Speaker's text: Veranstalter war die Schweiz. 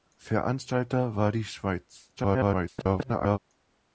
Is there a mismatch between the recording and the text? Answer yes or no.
yes